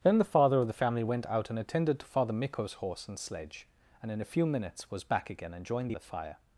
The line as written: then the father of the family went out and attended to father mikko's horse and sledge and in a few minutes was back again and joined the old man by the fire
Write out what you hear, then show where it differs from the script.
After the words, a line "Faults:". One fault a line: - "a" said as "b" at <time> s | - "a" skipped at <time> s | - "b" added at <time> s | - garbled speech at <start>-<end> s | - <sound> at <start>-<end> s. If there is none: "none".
then the father of the family went out and attended to father mikko's horse and sledge and in a few minutes was back again and joined the the fire
Faults:
- "old man by" skipped at 6.0 s